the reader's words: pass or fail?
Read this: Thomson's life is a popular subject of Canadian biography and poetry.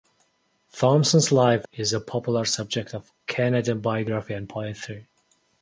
pass